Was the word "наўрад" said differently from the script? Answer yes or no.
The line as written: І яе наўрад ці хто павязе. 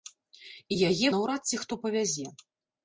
no